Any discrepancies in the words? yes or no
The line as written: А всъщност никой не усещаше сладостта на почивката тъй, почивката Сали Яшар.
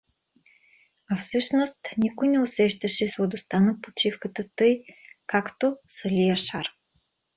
yes